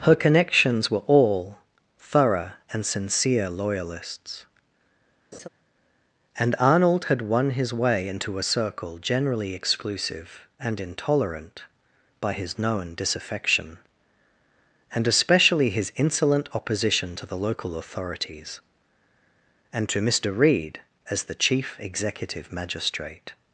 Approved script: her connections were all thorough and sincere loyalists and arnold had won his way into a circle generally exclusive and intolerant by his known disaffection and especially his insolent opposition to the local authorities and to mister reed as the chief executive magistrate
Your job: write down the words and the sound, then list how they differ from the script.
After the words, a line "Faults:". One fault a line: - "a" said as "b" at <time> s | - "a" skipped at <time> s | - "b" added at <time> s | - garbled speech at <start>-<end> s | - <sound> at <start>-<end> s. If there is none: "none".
her connections were all thorough and sincere loyalists and arnold had won his way into a circle generally exclusive and intolerant by his known disaffection and especially his insolent opposition to the local authorities and to mister reed as the chief executive magistrate
Faults:
- laugh at 5.3-5.5 s